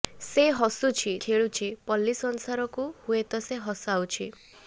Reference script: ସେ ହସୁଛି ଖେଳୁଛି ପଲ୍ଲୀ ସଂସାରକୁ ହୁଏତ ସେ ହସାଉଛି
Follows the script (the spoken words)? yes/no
yes